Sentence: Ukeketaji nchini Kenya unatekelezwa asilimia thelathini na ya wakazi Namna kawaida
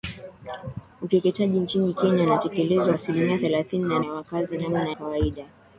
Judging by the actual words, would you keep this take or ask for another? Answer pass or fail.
pass